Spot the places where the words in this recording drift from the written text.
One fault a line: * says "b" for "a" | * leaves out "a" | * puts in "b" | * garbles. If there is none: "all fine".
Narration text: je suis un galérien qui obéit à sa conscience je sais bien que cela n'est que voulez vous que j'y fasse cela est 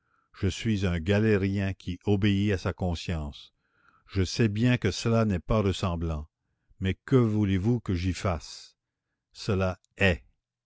* puts in "pas ressemblant mais"